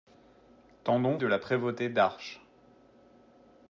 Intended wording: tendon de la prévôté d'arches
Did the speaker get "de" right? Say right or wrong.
right